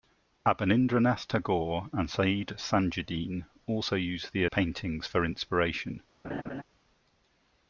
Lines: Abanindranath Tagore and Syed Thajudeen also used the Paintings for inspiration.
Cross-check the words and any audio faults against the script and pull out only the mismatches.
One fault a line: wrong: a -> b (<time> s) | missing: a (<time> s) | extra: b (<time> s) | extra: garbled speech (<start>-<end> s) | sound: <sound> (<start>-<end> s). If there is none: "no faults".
sound: laugh (6.2-6.6 s)